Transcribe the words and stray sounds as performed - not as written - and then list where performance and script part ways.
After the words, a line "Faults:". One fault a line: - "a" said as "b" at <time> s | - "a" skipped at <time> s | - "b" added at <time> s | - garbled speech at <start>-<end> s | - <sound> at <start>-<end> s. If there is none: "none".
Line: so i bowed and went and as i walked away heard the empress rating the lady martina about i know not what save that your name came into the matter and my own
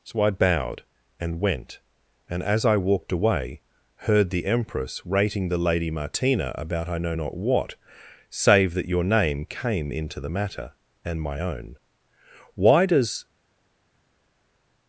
so i bowed and went and as i walked away heard the empress rating the lady martina about i know not what save that your name came into the matter and my own why does
Faults:
- "why does" added at 12.6 s